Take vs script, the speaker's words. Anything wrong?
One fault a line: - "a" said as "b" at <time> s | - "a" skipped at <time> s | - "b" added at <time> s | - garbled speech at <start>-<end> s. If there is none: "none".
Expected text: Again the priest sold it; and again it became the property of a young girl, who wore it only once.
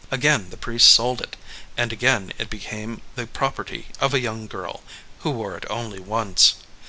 none